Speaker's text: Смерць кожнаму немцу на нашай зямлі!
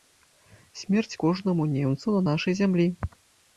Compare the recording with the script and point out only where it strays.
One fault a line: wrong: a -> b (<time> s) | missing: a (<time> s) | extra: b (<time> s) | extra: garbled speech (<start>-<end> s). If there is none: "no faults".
no faults